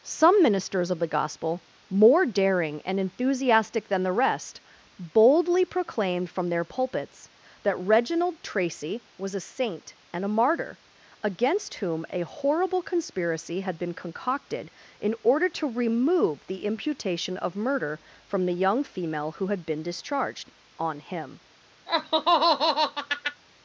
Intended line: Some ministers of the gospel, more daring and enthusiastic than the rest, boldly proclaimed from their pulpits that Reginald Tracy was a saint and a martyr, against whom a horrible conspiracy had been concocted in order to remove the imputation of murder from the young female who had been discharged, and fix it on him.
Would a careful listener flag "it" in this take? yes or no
yes